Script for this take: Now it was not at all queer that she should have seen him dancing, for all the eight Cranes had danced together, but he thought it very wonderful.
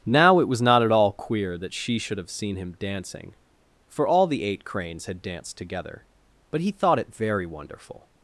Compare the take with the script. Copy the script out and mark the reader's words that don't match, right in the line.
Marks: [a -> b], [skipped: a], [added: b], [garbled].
Now it was not at all queer that she should have seen him dancing, for all the eight Cranes had danced together, but he thought it very wonderful.